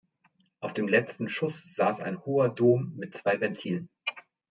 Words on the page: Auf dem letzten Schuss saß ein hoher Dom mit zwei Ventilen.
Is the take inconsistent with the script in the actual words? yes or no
no